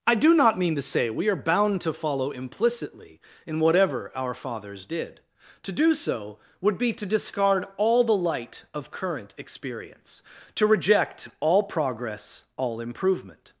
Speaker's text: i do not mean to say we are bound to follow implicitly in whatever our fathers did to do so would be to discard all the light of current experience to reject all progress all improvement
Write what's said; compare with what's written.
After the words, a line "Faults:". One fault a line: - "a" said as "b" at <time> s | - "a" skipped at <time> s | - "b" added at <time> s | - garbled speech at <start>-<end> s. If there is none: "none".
i do not mean to say we are bound to follow implicitly in whatever our fathers did to do so would be to discard all the light of current experience to reject all progress all improvement
Faults:
none